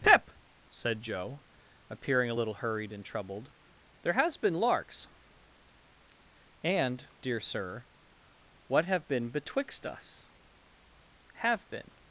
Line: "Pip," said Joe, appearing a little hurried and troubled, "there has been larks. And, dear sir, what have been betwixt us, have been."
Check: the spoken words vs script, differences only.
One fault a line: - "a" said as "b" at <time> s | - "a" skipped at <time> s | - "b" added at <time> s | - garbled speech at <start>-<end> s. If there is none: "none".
none